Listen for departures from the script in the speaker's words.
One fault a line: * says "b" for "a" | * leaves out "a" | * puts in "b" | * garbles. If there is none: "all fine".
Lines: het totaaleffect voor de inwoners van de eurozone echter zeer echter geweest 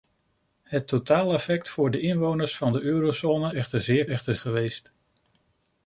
all fine